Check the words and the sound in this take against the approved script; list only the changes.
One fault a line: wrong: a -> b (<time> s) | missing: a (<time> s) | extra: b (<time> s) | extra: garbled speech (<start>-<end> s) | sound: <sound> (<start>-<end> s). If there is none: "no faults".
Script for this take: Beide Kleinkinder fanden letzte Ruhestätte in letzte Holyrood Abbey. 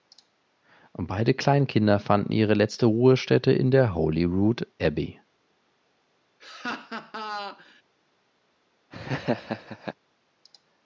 extra: ihre (2.3 s)
wrong: letzte -> der (3.7 s)
sound: laugh (6.4-7.8 s)
sound: laugh (8.9-10.0 s)